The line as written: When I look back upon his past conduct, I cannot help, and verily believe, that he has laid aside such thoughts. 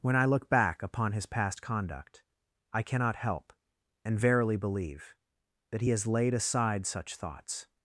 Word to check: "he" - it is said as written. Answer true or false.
true